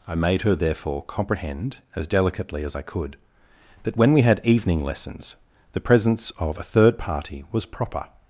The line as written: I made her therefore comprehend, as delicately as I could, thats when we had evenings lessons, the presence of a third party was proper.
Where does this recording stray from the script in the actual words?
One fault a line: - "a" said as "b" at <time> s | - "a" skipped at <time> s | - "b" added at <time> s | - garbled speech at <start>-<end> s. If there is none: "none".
- "thats" said as "that" at 3.8 s
- "evenings" said as "evening" at 4.4 s